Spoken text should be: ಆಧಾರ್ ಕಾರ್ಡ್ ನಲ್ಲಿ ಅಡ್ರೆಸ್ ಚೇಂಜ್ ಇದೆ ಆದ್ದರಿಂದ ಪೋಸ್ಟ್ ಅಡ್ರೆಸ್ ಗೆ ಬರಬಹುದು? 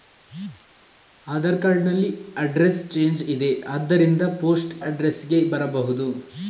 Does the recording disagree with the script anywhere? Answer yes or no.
no